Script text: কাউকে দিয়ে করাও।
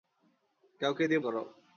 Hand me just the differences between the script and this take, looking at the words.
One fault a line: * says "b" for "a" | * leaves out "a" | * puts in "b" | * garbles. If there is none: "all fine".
all fine